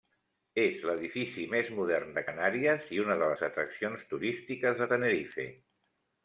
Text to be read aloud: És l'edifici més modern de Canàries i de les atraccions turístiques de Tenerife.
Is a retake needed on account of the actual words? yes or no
yes